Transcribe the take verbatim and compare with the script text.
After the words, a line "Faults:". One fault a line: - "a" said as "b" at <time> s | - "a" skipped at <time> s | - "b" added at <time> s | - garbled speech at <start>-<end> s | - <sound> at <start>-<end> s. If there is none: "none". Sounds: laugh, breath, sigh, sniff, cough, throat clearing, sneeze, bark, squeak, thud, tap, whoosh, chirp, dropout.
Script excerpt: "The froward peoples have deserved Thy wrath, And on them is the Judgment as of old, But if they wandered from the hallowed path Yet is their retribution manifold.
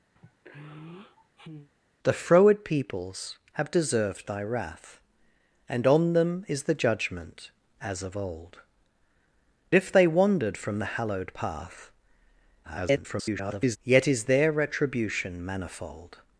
"The froward peoples have deserved Thy wrath, And on them is the Judgment as of old, If they wandered from the hallowed path [garbled] Yet is their retribution manifold.
Faults:
- sigh at 0.2-1.7 s
- "But" skipped at 8.6 s
- garbled speech at 12.6-13.8 s